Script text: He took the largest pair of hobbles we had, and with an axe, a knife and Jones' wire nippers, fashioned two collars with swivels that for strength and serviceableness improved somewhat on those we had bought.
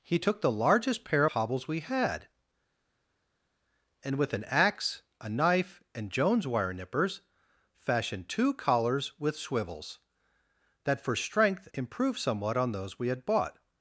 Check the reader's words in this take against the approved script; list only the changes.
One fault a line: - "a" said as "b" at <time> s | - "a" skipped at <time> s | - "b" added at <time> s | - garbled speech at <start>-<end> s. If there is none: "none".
- "of" skipped at 1.2 s
- "and serviceableness" skipped at 11.7 s